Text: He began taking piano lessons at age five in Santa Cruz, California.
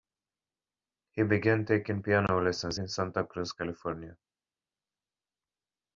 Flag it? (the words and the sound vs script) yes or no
yes